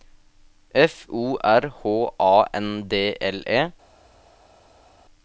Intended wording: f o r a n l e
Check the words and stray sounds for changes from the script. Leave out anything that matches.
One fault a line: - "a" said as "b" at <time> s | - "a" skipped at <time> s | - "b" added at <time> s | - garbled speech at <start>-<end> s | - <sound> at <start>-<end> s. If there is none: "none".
- "h" added at 1.7 s
- "d" added at 2.9 s